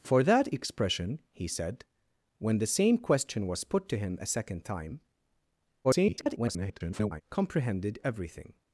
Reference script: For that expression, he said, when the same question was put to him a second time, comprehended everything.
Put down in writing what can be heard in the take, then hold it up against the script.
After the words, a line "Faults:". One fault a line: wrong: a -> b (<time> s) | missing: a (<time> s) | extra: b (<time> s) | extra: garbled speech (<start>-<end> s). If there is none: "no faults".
For that expression, he said, when the same question was put to him a second time, [garbled] comprehended everything.
Faults:
extra: garbled speech (5.8-7.2 s)